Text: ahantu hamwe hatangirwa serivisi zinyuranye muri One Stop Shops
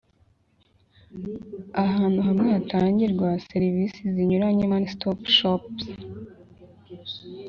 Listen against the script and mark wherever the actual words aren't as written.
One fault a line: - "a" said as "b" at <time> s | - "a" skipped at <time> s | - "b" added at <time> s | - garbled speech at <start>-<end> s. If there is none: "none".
- "muri" skipped at 4.6 s